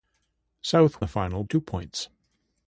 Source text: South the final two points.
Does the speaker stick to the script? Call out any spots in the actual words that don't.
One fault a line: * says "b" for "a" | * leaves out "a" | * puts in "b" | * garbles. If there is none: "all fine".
all fine